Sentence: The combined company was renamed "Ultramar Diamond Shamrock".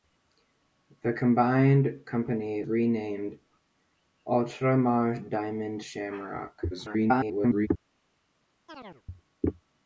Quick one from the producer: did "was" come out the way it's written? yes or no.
no